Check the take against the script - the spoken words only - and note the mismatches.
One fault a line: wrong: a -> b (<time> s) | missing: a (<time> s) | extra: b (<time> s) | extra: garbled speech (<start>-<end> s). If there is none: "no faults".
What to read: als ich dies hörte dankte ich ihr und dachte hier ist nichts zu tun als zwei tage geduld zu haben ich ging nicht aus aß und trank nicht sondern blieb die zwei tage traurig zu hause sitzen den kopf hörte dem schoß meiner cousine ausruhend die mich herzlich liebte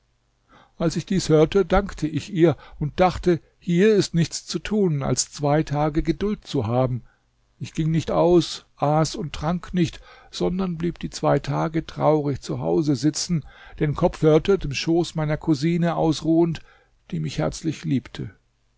no faults